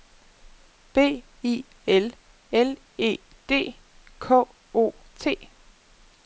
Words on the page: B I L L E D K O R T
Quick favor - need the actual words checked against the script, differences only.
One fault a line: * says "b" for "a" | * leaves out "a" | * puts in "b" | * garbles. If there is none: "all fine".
* leaves out "R"